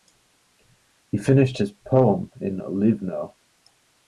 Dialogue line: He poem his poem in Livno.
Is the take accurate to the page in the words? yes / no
no